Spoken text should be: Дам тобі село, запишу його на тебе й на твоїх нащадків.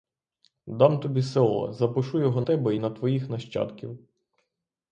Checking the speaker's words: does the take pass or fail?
fail